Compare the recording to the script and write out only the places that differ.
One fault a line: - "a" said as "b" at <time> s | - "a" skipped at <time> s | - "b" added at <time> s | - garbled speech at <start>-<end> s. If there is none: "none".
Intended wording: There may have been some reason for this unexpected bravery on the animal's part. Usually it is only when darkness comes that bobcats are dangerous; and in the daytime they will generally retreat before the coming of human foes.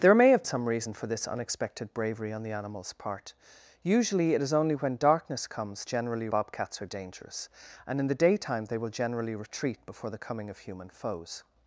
- "been" skipped at 0.4 s
- "that" said as "generally" at 5.8 s